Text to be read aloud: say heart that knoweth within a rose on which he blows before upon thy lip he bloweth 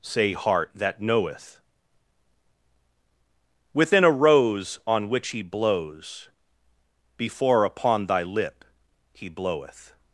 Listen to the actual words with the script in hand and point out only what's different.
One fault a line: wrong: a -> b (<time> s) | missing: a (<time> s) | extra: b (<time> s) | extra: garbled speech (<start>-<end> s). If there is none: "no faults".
no faults